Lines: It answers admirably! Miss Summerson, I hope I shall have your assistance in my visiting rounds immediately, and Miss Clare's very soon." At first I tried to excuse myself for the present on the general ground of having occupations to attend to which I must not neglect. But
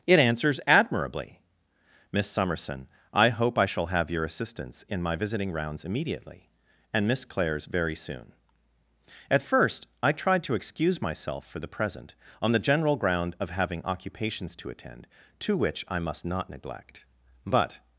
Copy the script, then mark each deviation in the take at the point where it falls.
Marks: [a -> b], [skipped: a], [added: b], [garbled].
It answers admirably! Miss Summerson, I hope I shall have your assistance in my visiting rounds immediately, and Miss Clare's very soon." At first I tried to excuse myself for the present on the general ground of having occupations to attend to which I must not neglect. But